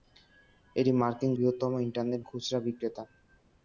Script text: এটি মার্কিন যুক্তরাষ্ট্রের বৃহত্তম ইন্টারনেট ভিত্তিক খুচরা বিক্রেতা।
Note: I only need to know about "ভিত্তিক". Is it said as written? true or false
false